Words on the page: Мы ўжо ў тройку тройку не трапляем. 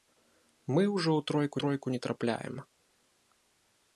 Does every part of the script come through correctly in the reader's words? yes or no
yes